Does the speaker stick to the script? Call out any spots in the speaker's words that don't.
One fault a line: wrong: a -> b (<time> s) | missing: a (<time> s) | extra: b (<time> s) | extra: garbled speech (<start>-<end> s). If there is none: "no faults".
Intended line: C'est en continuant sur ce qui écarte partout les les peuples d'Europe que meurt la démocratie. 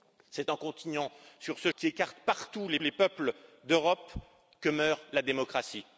no faults